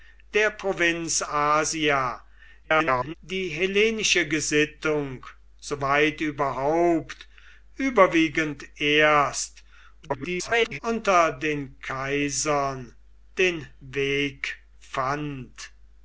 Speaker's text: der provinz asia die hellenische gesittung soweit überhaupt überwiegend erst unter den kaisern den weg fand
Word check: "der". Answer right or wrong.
right